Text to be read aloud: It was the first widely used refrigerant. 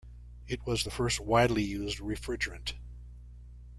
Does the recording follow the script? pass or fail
pass